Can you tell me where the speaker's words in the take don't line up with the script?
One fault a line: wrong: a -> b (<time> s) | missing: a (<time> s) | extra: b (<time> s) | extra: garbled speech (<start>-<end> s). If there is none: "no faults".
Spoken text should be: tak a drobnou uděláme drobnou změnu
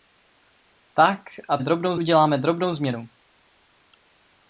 no faults